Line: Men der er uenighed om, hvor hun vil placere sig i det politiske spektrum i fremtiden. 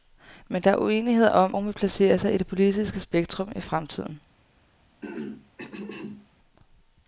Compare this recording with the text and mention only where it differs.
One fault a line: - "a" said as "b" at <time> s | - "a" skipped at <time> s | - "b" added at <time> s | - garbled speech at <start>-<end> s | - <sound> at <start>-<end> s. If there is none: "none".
- "hvor" skipped at 1.5 s
- throat clearing at 5.0-6.3 s